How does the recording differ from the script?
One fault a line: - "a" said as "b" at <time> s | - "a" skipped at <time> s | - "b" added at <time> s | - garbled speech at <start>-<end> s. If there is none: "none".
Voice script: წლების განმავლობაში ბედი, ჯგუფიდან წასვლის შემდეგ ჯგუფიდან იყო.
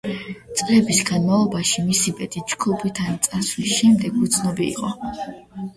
- "მისი" added at 1.9 s
- "ჯგუფიდან" said as "უცნობი" at 4.3 s